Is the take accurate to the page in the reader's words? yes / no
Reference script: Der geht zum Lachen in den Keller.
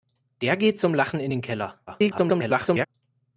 no